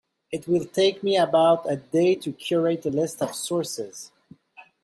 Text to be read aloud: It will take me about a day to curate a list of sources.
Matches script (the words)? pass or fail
pass